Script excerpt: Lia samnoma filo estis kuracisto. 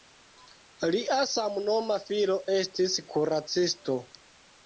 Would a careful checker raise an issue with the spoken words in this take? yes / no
no